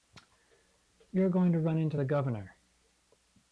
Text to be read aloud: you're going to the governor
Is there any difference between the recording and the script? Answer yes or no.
yes